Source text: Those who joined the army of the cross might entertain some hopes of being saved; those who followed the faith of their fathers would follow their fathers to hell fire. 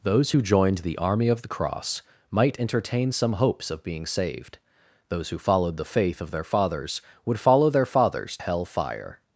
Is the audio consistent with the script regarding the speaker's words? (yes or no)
no